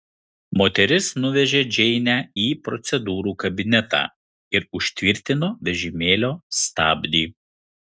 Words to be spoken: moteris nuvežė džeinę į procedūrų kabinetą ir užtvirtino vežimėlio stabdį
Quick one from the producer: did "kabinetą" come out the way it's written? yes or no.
yes